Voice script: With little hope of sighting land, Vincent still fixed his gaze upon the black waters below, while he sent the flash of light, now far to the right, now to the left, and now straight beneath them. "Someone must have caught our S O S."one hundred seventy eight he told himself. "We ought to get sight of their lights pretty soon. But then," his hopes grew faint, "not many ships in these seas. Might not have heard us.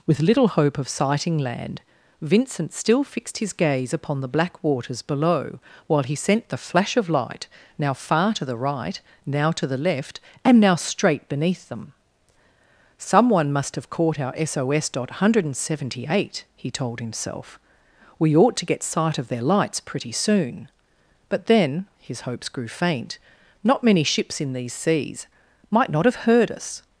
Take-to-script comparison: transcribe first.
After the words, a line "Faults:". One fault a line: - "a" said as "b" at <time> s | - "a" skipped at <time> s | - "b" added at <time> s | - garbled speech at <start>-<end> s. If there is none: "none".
With little hope of sighting land, Vincent still fixed his gaze upon the black waters below, while he sent the flash of light, now far to the right, now to the left, and now straight beneath them. "Someone must have caught our S O S."one hundred seventy eight he told himself. "We ought to get sight of their lights pretty soon. But then," his hopes grew faint, "not many ships in these seas. Might not have heard us.
Faults:
none